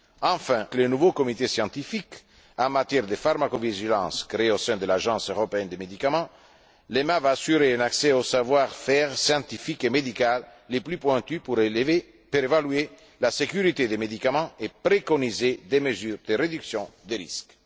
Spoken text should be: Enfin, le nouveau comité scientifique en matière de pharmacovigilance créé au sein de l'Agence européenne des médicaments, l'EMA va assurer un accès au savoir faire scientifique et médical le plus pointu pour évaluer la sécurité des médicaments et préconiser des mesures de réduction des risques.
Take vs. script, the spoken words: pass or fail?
pass